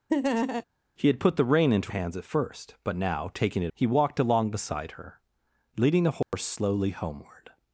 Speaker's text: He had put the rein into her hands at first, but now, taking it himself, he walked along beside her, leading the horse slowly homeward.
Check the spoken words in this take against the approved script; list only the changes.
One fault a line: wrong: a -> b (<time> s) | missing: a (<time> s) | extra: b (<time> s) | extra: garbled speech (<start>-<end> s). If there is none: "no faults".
missing: her (1.9 s)
missing: himself (3.7 s)